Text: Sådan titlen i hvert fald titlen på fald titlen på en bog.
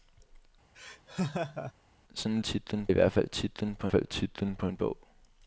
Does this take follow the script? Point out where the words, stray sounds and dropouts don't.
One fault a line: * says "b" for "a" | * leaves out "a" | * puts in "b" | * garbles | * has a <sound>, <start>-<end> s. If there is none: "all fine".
* has a laugh, 0.7-1.7 s